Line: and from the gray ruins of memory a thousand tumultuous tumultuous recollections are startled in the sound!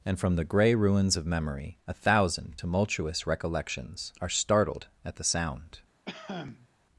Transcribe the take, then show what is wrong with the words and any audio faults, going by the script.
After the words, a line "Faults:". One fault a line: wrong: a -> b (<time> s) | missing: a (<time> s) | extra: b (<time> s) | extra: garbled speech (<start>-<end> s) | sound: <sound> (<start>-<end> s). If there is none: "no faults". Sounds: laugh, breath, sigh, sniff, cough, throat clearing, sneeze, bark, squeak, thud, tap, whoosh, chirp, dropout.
and from the gray ruins of memory a thousand tumultuous recollections are startled at the sound!
Faults:
missing: tumultuous (3.3 s)
wrong: in -> at (5.0 s)
sound: cough (6.0-6.7 s)